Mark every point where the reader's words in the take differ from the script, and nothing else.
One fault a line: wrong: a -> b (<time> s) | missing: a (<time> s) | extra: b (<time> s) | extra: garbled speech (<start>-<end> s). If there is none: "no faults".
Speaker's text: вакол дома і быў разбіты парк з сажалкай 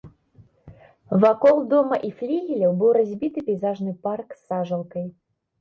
extra: флігеляў (2.2 s)
extra: пейзажны (3.5 s)